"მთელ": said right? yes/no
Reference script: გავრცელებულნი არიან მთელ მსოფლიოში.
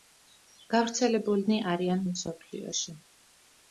no